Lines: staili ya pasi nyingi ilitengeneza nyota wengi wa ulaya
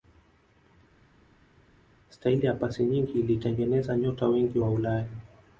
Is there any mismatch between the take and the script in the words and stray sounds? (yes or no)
no